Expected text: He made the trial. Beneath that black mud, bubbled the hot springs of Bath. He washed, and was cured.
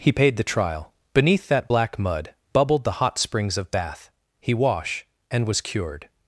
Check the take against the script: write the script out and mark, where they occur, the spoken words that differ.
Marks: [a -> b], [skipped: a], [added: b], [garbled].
He [made -> paid] the trial. Beneath that black mud, bubbled the hot springs of Bath. He [washed, -> wash] and was cured.